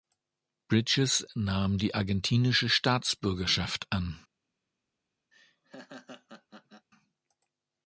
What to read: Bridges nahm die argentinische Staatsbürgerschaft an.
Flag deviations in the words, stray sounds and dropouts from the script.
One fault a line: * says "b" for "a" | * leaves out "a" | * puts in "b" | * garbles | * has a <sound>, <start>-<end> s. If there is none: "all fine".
* has a laugh, 5.3-6.9 s